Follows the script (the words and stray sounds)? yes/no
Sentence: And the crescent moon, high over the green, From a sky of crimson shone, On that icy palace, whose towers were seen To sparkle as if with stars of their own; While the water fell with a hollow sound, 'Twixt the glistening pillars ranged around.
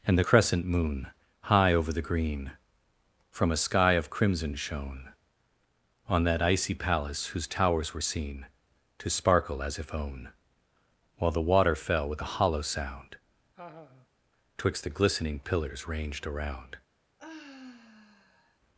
no